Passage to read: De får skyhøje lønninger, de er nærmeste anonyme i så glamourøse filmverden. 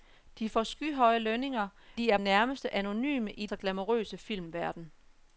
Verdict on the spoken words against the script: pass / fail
pass